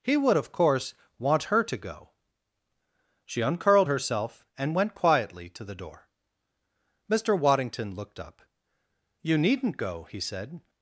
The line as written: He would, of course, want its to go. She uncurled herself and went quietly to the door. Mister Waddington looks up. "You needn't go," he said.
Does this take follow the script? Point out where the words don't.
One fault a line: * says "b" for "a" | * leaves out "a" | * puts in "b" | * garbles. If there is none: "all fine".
* says "her" for "its"
* says "looked" for "looks"